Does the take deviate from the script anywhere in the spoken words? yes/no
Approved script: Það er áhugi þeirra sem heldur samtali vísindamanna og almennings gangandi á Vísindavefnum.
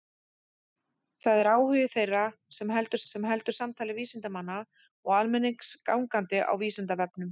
yes